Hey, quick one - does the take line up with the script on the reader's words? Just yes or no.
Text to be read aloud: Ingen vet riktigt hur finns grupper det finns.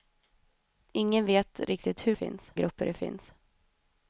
yes